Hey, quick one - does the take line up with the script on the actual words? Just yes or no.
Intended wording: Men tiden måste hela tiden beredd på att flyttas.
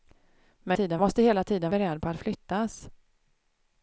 yes